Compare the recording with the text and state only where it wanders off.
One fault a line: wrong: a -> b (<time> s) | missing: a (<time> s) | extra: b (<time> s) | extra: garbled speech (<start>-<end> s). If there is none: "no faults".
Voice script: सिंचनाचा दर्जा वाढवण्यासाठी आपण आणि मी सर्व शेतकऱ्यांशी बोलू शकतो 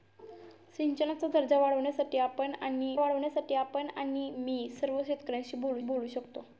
extra: वाढवण्यासाठी आपण आणि (3.0 s)
extra: बोलू (5.8 s)